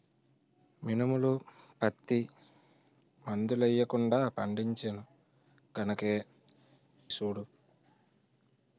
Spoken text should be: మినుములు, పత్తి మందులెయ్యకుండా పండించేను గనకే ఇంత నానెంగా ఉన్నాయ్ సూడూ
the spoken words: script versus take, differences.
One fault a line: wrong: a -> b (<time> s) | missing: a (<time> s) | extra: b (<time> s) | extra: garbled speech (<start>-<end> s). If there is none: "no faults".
missing: ఇంత నానెంగా ఉన్నాయ్ (6.1 s)